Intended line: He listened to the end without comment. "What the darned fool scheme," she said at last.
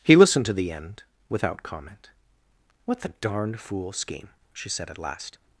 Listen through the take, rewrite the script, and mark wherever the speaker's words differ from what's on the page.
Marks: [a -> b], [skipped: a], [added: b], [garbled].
He listened to the end without comment. "What the darned fool scheme," she said at last.